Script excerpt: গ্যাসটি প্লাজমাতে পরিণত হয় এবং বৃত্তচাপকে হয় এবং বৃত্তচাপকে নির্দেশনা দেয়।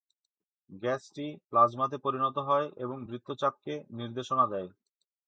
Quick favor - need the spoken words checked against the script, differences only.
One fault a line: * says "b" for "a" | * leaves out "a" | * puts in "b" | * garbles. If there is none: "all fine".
* leaves out "হয় এবং বৃত্তচাপকে"